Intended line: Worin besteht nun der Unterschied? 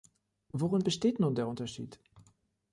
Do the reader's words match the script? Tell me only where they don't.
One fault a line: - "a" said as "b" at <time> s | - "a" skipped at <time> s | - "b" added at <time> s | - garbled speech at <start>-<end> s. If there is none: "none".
none